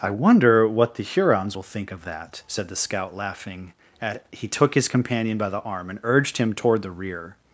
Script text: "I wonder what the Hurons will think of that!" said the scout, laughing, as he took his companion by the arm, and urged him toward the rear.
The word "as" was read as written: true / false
false